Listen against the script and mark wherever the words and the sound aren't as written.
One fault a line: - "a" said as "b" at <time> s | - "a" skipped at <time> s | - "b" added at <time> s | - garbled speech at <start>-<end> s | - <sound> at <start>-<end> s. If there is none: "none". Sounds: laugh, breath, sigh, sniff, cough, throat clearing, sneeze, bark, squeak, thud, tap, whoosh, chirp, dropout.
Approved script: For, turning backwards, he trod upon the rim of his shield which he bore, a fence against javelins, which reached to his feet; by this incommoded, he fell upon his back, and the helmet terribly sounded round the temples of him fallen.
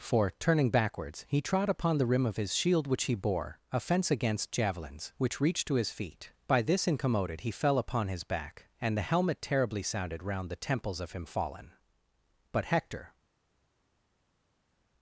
- "But Hector" added at 12.5 s